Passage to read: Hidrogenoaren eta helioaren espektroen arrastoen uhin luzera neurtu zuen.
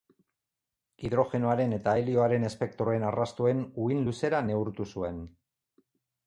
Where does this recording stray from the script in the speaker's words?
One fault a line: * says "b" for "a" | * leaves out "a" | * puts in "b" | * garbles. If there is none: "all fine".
all fine